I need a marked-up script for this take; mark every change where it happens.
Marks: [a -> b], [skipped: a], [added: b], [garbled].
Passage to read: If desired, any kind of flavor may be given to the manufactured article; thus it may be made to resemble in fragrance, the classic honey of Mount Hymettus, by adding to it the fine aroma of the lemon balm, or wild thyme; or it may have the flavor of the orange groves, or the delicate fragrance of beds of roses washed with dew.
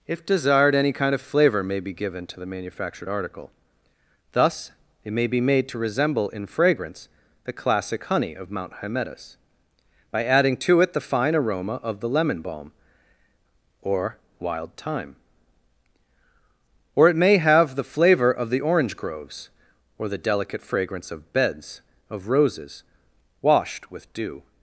If desired, any kind of flavor may be given to the manufactured article; thus it may be made to resemble in fragrance, the classic honey of Mount Hymettus, by adding to it the fine aroma of the lemon balm, or wild thyme; or it may have the flavor of the orange groves, or the delicate fragrance of beds of roses washed with dew.